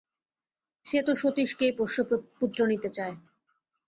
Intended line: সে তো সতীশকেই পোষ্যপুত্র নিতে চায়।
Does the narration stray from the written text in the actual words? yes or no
no